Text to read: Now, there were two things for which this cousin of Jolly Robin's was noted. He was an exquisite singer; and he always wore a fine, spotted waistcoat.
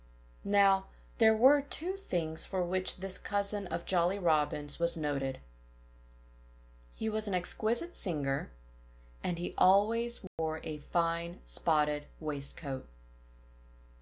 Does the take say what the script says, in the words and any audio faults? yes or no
no